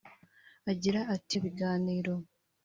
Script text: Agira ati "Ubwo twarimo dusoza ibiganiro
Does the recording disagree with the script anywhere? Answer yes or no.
yes